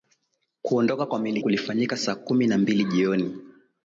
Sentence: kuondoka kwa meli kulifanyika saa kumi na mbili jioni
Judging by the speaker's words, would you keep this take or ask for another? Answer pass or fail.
pass